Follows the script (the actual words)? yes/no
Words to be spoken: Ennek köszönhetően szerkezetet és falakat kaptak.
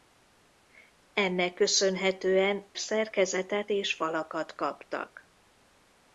yes